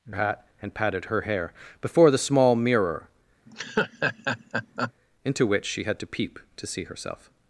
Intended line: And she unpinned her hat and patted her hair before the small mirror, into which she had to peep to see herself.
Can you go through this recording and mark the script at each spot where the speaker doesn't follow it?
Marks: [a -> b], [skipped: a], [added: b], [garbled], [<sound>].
And [skipped: she unpinned her] hat and patted her hair before the small mirror, [laugh] into which she had to peep to see herself.